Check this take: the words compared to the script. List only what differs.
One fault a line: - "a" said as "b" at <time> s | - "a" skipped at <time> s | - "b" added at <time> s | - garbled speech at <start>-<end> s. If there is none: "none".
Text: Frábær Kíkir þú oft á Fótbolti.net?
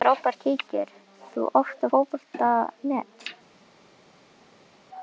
none